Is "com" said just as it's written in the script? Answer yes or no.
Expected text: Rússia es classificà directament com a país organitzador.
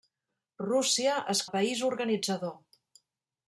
no